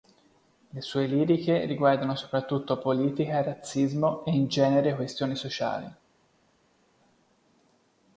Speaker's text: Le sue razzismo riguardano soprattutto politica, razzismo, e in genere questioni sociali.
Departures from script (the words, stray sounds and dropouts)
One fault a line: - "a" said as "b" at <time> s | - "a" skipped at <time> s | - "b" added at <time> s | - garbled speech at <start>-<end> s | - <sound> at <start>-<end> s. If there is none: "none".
- "razzismo" said as "liriche" at 1.1 s